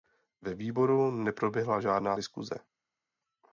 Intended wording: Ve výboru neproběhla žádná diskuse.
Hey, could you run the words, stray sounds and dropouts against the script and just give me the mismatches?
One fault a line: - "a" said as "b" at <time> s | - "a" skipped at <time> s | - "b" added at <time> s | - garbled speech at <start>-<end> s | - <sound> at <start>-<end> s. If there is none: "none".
none